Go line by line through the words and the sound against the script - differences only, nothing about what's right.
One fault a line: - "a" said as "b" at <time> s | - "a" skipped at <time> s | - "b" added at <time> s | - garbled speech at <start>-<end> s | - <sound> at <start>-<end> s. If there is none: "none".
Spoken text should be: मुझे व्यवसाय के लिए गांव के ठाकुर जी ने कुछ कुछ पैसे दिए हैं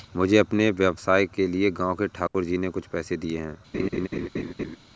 - "अपने" added at 0.4 s
- dropout at 2.3-2.3 s
- "कुछ" skipped at 2.9 s
- laugh at 3.7-4.8 s